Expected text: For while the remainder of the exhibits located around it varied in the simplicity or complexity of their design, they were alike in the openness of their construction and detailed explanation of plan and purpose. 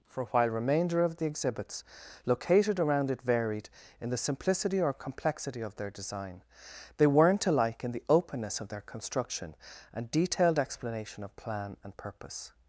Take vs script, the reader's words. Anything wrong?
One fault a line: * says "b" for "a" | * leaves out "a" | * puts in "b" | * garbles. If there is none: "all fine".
* leaves out "the"
* says "weren't" for "were"